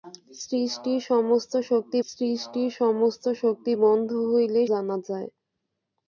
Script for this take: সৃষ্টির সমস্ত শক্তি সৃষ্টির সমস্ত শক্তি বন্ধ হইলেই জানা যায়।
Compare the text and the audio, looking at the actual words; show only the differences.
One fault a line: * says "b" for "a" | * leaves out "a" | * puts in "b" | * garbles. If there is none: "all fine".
all fine